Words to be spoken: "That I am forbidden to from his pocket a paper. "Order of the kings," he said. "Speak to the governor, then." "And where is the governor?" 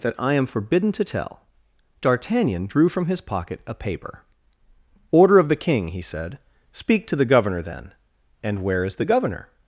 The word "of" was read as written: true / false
true